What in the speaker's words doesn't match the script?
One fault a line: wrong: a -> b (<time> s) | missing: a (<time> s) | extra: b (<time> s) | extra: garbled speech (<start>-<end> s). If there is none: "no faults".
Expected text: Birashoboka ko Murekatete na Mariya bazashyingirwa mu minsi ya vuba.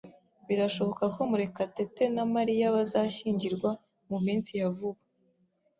no faults